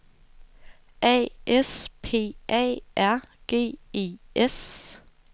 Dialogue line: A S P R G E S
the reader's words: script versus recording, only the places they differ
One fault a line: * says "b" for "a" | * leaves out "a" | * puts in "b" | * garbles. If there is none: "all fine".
* puts in "A"